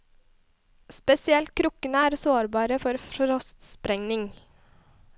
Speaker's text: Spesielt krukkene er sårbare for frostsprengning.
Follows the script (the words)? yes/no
yes